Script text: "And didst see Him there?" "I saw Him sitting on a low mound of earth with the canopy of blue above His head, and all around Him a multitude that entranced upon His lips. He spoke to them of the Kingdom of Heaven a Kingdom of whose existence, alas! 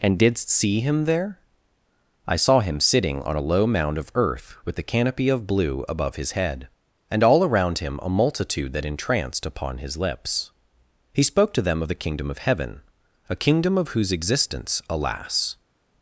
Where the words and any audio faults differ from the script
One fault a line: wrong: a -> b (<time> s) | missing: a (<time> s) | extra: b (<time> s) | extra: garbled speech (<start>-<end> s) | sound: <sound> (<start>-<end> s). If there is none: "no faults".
no faults